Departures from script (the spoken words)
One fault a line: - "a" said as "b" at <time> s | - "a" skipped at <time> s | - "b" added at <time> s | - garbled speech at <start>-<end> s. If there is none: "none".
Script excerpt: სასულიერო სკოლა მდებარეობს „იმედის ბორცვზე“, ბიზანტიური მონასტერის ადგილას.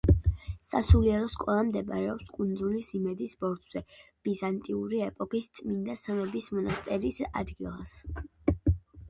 - "კუნძულის" added at 2.4 s
- "ეპოქის წმინდა სამების" added at 5.1 s